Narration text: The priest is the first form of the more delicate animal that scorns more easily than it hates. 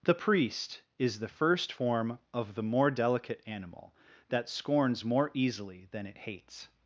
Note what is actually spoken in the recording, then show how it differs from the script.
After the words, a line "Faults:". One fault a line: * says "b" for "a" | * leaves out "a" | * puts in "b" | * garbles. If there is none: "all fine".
The priest is the first form of the more delicate animal that scorns more easily than it hates.
Faults:
all fine